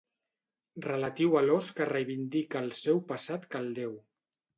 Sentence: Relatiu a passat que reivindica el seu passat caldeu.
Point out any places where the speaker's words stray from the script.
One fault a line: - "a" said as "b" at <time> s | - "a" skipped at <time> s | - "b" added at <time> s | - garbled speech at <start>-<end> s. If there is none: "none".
- "passat" said as "l'ós" at 1.5 s